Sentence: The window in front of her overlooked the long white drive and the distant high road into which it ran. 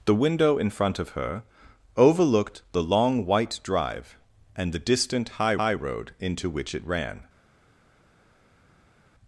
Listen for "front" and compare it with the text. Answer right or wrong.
right